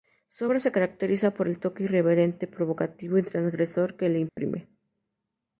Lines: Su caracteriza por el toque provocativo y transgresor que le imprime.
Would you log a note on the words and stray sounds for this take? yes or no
yes